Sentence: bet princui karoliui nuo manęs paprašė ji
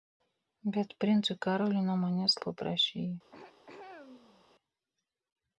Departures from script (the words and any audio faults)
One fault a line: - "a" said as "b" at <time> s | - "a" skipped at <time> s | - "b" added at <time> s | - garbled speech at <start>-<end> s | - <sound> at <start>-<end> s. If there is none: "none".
- throat clearing at 3.3-4.5 s